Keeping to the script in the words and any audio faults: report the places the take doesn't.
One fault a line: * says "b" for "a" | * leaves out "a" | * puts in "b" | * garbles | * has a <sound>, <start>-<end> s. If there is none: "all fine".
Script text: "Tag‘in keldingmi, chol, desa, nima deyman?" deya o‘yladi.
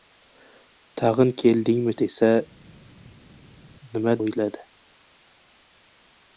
* leaves out "chol"
* leaves out "deyman deya"